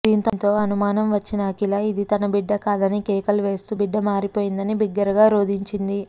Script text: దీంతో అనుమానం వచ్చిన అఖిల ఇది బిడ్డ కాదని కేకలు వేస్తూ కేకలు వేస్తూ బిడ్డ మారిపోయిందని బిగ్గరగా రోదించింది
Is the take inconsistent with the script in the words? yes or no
yes